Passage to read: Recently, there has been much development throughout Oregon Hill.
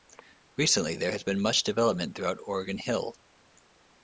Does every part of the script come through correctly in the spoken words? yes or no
yes